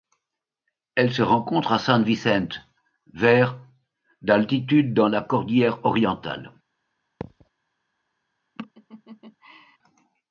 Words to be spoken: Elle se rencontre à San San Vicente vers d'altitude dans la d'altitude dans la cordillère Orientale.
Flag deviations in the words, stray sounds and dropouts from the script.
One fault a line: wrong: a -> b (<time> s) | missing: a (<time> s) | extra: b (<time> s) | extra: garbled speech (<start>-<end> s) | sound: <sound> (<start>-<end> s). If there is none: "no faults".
missing: San (2.0 s)
missing: d'altitude dans la (5.2 s)
sound: thud (7.2-7.5 s)
sound: laugh (8.6-9.8 s)